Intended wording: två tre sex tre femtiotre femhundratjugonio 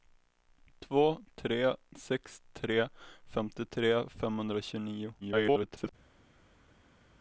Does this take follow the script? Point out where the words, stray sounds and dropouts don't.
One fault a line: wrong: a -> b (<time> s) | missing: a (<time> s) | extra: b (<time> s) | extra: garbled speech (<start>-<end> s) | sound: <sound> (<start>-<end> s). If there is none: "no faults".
extra: garbled speech (5.2-5.9 s)